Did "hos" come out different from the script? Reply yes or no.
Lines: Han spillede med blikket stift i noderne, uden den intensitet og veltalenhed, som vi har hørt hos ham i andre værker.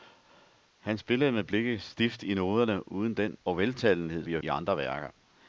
yes